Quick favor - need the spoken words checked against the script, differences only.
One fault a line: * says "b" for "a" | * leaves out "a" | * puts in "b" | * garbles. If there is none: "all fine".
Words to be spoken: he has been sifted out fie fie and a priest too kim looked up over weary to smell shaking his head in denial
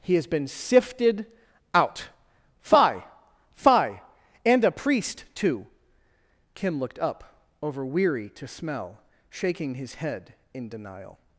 all fine